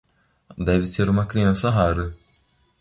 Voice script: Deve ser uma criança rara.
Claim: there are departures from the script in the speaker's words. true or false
false